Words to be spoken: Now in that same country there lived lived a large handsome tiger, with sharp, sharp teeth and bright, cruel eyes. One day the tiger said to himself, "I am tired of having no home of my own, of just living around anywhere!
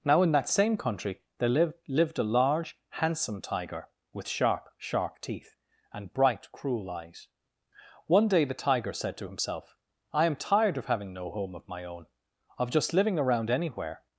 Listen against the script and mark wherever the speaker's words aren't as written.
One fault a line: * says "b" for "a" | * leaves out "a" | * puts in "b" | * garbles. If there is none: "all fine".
all fine